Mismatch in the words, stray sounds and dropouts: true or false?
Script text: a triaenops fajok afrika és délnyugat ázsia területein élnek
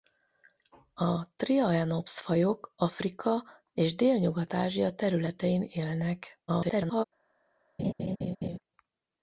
true